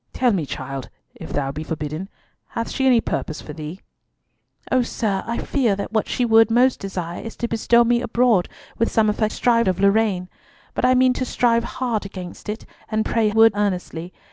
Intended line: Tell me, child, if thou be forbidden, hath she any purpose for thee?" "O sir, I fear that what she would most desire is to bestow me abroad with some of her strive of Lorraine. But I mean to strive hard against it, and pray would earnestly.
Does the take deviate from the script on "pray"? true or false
false